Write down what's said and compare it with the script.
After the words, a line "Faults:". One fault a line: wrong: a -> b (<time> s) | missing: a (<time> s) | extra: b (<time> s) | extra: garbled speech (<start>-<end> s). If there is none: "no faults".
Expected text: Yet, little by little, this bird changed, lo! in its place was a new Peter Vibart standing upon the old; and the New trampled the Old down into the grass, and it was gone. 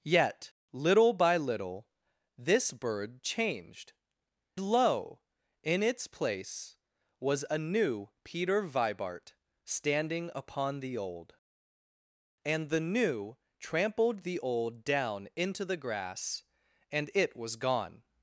Yet, little by little, this bird changed, lo! in its place was a new Peter Vibart standing upon the old; and the New trampled the Old down into the grass, and it was gone.
Faults:
no faults